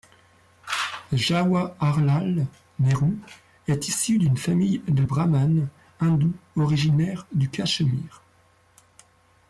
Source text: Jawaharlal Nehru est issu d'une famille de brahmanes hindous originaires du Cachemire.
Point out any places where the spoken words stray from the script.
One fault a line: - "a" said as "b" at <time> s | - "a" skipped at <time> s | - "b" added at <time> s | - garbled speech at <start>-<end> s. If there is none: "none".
none